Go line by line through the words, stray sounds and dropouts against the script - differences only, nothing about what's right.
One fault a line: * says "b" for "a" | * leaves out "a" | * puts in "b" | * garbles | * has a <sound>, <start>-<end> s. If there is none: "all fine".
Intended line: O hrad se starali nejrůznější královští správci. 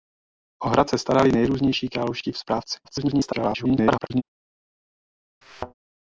* garbles
* has a thud, 5.4-5.7 s